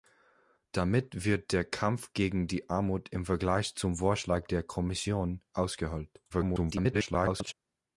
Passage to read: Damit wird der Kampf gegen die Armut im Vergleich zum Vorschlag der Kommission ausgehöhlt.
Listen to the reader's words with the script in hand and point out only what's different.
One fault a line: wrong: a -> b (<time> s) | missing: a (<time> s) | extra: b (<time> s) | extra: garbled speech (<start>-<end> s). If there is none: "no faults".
extra: garbled speech (6.3-7.5 s)